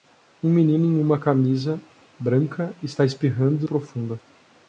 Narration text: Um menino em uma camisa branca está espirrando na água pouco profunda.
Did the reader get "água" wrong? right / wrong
wrong